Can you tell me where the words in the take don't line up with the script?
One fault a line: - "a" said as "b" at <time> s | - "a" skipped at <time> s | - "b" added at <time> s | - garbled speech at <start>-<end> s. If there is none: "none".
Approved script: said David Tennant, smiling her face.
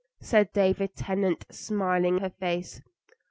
none